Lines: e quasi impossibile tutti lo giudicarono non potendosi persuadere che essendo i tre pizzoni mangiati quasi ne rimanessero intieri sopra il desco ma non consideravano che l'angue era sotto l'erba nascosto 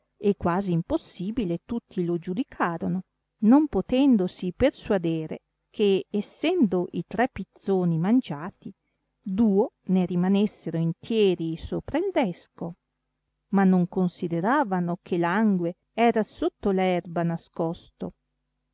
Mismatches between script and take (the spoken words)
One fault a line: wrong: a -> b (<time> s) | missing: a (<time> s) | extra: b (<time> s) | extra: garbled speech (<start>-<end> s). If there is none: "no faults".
wrong: quasi -> duo (9.2 s)